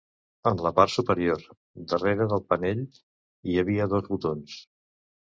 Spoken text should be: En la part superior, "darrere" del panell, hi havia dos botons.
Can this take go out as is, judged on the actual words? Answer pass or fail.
pass